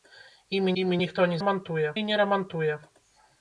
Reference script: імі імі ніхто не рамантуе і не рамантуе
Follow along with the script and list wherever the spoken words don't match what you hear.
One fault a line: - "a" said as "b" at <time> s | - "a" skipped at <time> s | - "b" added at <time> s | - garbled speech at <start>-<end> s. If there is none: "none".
none